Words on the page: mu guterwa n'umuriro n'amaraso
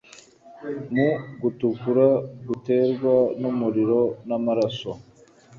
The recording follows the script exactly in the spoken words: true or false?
false